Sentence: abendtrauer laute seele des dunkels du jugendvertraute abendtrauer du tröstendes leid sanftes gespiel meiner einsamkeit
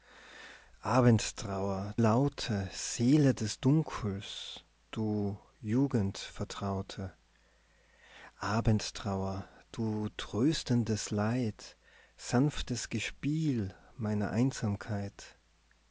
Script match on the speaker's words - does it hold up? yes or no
yes